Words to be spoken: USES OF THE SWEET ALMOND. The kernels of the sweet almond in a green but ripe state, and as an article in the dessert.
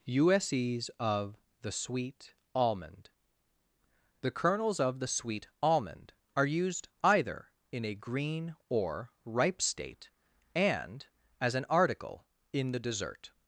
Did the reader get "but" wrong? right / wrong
wrong